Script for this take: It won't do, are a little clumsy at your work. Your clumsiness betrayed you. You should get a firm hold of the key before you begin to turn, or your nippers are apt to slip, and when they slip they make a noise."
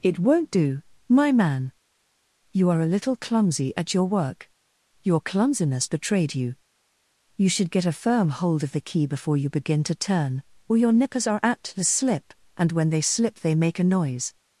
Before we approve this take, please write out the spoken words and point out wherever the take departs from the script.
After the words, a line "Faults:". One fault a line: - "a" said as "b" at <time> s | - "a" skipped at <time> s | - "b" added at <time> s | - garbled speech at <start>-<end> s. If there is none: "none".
It won't do, my man. You are a little clumsy at your work. Your clumsiness betrayed you. You should get a firm hold of the key before you begin to turn, or your nippers are apt to slip, and when they slip they make a noise."
Faults:
- "my man You" added at 1.1 s